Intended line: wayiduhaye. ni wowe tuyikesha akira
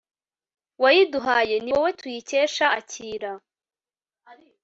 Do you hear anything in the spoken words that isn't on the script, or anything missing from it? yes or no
no